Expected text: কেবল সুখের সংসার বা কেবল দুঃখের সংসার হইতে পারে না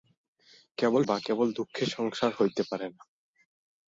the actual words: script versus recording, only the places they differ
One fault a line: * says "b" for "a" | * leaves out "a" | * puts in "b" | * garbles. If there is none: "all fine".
* leaves out "সুখের সংসার"